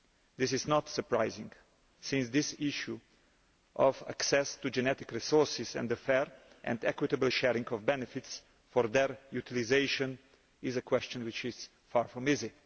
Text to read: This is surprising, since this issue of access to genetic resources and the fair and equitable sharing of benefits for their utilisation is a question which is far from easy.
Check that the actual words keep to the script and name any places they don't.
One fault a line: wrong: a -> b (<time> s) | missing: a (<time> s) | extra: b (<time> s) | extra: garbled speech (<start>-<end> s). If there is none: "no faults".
extra: not (0.7 s)